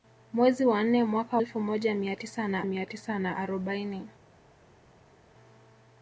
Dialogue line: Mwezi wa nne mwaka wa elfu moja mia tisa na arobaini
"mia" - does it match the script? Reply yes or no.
yes